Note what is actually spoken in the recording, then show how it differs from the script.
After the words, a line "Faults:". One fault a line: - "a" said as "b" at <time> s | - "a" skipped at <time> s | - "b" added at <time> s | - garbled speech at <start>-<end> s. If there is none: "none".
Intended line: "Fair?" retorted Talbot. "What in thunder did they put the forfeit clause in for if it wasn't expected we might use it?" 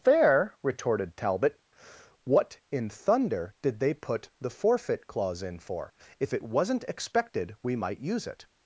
"Fair?" retorted Talbot. "What in thunder did they put the forfeit clause in for if it wasn't expected we might use it?"
Faults:
none